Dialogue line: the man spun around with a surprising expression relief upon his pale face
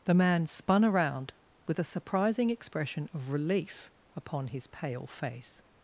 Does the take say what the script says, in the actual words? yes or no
no